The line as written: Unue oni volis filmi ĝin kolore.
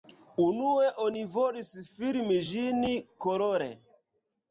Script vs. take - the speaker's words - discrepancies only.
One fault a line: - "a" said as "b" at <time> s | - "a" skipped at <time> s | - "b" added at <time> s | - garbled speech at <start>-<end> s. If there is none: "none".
none